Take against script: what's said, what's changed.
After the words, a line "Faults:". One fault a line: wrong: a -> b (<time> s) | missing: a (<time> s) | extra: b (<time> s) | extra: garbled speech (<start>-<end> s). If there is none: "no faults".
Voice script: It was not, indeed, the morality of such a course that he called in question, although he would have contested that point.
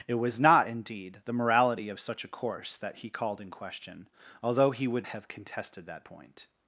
It was not, indeed, the morality of such a course that he called in question, although he would have contested that point.
Faults:
no faults